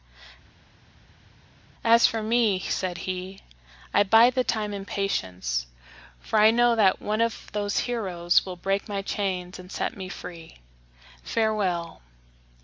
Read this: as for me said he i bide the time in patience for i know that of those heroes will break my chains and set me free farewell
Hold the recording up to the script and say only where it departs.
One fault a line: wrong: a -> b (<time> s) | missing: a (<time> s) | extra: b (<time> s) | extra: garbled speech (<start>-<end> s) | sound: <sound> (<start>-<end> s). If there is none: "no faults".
extra: one (7.0 s)